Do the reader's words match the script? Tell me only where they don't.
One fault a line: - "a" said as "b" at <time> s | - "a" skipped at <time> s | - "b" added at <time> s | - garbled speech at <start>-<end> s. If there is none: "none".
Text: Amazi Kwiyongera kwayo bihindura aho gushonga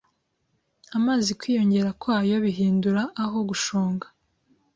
none